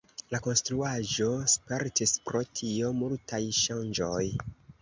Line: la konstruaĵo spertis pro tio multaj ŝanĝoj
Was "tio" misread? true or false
false